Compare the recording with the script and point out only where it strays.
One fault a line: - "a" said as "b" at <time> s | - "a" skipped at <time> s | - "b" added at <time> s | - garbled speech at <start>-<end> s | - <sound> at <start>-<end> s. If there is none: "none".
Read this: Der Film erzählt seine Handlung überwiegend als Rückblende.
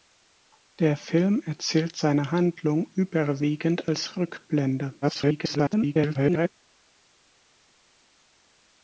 - garbled speech at 5.0-6.5 s